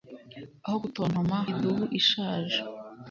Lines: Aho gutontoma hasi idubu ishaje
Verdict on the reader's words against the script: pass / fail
fail